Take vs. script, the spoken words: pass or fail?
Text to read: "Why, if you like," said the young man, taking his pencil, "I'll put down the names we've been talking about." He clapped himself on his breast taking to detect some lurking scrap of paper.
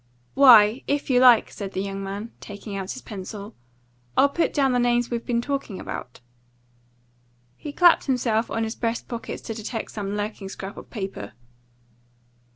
fail